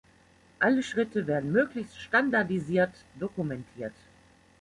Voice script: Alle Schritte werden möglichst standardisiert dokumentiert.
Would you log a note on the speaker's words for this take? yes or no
no